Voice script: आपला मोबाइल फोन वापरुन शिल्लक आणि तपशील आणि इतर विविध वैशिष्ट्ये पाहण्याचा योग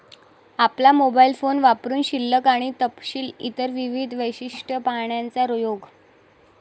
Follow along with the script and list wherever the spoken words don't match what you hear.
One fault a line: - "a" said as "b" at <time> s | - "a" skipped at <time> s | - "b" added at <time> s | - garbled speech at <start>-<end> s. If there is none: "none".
- "आणि" skipped at 3.3 s